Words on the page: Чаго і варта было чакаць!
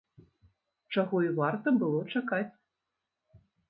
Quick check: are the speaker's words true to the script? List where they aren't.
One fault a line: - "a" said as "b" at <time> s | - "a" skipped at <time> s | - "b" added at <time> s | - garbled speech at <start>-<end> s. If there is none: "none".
none